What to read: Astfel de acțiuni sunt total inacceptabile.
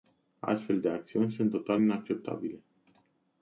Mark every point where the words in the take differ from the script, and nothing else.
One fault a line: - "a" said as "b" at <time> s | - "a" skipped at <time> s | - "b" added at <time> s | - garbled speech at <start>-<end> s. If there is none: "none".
none